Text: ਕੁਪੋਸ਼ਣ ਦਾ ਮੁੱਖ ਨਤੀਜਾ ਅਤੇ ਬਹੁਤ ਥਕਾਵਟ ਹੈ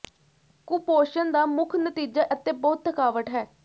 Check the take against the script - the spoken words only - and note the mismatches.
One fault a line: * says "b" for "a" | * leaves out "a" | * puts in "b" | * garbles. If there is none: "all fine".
all fine